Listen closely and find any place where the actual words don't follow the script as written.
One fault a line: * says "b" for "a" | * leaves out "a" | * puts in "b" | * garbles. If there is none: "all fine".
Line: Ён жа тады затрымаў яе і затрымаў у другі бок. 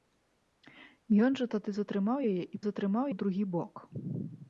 all fine